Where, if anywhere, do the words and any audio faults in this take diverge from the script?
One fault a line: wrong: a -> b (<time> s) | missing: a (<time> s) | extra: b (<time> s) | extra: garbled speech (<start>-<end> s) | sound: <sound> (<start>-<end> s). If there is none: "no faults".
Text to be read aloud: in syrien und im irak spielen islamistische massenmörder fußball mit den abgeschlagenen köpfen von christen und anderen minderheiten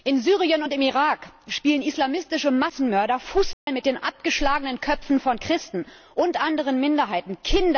sound: dropout (3.5-3.7 s)